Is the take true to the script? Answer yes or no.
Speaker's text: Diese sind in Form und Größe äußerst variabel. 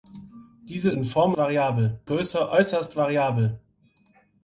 no